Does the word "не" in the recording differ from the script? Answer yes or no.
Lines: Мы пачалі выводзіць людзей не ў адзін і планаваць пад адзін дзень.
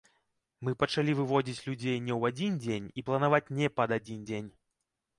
no